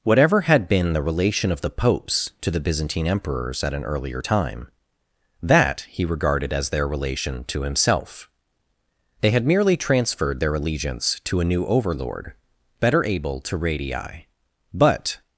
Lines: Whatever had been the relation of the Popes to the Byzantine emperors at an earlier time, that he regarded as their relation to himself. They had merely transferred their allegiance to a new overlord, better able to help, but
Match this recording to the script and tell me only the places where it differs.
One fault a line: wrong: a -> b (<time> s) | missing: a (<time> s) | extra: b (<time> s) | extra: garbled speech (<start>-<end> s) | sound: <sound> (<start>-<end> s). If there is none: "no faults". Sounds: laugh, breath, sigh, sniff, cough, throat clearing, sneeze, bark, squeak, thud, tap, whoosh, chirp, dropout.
wrong: help -> radii (13.6 s)